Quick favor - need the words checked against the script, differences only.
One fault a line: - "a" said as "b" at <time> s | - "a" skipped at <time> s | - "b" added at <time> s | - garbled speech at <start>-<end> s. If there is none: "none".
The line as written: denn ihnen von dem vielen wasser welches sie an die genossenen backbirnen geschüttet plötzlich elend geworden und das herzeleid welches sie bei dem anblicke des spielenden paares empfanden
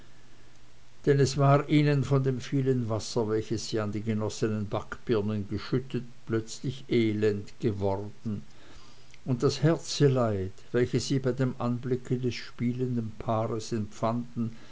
- "es war" added at 1.2 s